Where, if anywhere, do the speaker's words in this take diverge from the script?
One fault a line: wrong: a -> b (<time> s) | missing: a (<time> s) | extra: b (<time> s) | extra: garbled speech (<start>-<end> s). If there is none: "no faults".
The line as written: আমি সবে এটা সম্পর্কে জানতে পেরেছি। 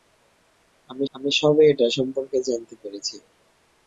extra: আমি (1.1 s)